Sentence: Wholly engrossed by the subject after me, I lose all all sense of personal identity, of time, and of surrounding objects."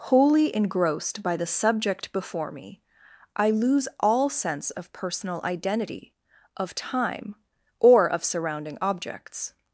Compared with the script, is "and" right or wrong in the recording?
wrong